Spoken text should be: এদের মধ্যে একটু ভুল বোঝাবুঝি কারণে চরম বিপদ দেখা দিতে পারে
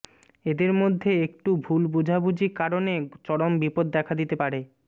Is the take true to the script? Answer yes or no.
yes